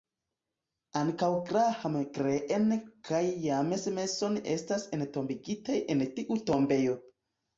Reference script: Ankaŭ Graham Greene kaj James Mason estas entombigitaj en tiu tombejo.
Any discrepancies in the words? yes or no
no